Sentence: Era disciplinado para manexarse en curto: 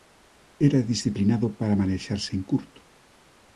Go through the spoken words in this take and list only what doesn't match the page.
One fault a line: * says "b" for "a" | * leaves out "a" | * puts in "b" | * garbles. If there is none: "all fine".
all fine